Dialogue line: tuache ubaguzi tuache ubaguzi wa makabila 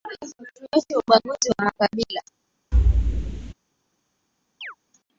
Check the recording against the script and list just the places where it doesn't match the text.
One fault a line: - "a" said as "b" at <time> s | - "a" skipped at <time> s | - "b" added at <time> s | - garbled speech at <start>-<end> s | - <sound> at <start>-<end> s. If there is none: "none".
- "tuache ubaguzi" skipped at 1.5 s
- thud at 2.7-3.5 s
- chirp at 4.6-4.8 s